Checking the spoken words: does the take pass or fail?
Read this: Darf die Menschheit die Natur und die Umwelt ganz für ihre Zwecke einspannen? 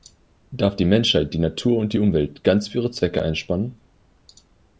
pass